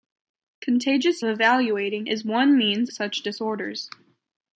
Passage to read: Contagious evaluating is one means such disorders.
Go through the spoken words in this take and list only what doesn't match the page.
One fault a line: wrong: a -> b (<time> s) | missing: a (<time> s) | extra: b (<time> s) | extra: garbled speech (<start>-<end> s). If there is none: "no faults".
no faults